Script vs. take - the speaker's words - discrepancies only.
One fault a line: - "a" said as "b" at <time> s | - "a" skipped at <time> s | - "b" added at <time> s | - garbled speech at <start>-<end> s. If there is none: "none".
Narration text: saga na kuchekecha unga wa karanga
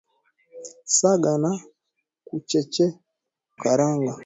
- "kuchekecha unga wa" skipped at 1.5 s